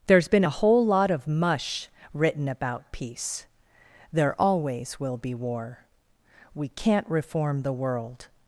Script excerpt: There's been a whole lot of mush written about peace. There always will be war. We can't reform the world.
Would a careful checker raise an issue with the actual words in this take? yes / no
no